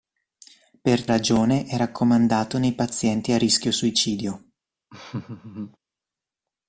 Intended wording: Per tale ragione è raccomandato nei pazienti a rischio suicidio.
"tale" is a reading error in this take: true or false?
true